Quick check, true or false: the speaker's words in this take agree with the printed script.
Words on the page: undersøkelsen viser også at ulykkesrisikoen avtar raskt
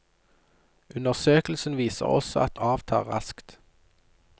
false